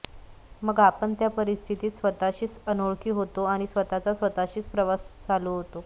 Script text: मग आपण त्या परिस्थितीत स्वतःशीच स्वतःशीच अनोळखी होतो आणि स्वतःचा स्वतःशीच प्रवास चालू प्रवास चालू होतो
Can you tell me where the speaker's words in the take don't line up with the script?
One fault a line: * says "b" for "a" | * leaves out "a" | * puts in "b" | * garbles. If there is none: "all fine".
* leaves out "स्वतःशीच"
* leaves out "प्रवास चालू"